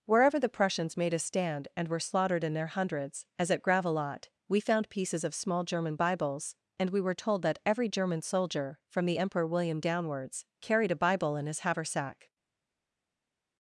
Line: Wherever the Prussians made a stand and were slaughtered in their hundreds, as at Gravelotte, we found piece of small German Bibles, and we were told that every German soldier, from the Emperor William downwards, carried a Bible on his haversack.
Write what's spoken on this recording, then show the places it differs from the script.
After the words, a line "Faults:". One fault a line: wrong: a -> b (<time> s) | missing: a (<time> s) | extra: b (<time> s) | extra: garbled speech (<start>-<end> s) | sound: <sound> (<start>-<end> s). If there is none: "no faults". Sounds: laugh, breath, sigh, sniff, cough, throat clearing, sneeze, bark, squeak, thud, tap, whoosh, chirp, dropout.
Wherever the Prussians made a stand and were slaughtered in their hundreds, as at Gravelotte, we found pieces of small German Bibles, and we were told that every German soldier, from the Emperor William downwards, carried a Bible in his haversack.
Faults:
wrong: piece -> pieces (4.9 s)
wrong: on -> in (11.4 s)